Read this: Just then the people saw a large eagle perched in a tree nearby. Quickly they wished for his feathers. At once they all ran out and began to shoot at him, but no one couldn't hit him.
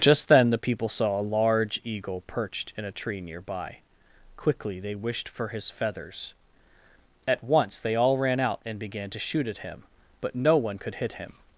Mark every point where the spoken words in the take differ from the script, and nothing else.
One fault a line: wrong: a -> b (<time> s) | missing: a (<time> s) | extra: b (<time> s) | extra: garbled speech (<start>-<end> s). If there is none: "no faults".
wrong: couldn't -> could (10.8 s)